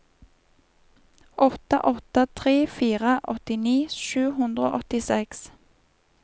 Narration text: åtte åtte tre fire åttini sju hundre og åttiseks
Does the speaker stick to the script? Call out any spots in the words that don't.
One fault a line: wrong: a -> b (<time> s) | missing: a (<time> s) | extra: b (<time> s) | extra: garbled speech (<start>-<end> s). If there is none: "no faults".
no faults